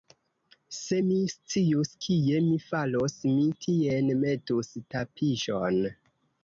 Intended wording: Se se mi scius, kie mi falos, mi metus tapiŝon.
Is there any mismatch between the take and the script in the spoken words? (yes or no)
yes